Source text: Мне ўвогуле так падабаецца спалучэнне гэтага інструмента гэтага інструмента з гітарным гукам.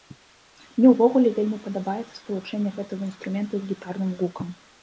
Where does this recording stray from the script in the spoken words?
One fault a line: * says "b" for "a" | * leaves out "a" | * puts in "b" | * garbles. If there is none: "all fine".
* says "вельмі" for "так"
* leaves out "гэтага інструмента"